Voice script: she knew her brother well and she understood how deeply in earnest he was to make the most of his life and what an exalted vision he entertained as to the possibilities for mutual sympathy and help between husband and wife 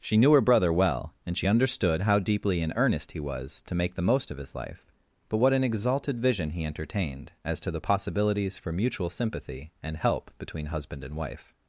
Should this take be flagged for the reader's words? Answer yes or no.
yes